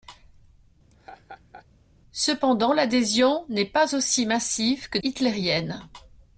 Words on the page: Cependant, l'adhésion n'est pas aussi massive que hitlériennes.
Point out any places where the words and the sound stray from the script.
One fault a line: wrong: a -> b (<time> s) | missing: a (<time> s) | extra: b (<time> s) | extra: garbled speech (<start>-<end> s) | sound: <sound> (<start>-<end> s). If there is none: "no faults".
sound: laugh (0.9-1.7 s)